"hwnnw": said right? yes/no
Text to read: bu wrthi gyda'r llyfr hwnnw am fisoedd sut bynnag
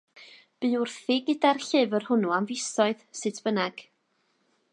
yes